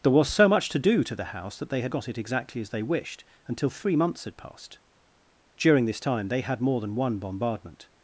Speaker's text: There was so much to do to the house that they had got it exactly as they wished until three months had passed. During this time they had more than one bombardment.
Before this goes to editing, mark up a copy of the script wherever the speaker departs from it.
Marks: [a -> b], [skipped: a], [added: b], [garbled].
There was so much to do to the house that they had got it exactly as they wished until three months had passed. During this time they had more than one bombardment.